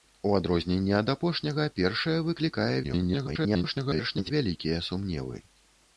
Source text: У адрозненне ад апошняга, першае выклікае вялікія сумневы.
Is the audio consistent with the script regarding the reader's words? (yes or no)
no